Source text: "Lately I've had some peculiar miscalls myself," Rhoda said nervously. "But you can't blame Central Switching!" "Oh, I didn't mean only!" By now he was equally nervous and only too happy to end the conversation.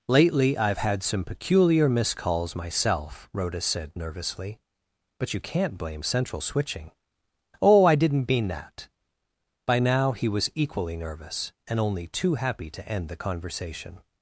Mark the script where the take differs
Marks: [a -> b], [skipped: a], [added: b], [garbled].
"Lately I've had some peculiar miscalls myself," Rhoda said nervously. "But you can't blame Central Switching!" "Oh, I didn't mean [only!" -> that] By now he was equally nervous and only too happy to end the conversation.